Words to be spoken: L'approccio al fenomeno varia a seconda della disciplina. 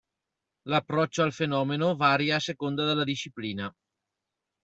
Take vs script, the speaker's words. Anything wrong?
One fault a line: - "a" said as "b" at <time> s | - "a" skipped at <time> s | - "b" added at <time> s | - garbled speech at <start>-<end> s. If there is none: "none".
none